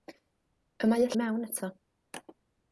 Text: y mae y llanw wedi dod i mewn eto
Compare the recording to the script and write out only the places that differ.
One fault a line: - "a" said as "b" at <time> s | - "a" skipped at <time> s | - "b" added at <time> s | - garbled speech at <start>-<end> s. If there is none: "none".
- "llanw wedi dod" skipped at 1.1 s